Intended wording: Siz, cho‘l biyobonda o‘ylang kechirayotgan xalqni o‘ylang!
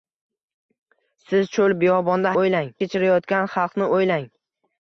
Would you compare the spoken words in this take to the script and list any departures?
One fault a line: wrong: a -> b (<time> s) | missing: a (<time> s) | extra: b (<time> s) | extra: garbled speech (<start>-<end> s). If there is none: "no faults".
no faults